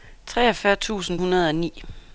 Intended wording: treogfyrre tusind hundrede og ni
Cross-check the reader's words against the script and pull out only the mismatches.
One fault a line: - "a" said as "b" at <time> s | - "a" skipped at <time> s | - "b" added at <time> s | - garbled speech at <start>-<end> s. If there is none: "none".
none